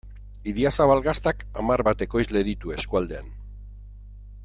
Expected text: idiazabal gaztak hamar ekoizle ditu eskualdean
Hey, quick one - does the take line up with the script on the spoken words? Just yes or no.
no